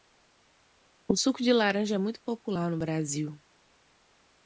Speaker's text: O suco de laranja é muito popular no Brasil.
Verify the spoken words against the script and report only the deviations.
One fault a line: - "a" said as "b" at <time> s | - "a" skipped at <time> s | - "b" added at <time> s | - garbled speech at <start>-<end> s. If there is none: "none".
none